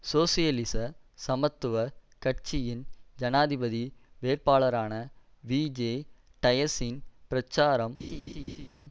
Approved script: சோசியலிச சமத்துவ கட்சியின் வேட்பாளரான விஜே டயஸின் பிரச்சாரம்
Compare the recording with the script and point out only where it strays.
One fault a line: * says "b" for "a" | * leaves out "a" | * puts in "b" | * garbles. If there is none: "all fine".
* puts in "ஜனாதிபதி"